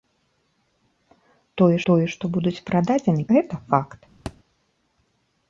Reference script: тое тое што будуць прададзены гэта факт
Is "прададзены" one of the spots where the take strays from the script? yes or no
no